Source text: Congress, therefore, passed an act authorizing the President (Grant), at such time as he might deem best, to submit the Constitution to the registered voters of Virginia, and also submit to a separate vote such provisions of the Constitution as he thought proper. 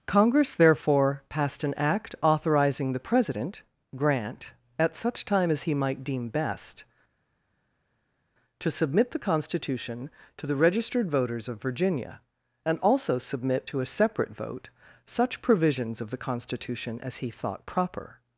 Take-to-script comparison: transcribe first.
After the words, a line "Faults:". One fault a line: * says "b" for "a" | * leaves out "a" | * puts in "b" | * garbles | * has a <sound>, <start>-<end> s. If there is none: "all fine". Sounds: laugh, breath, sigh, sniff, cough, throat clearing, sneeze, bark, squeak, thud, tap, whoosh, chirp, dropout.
Congress, therefore, passed an act authorizing the President (Grant), at such time as he might deem best, to submit the Constitution to the registered voters of Virginia, and also submit to a separate vote such provisions of the Constitution as he thought proper.
Faults:
all fine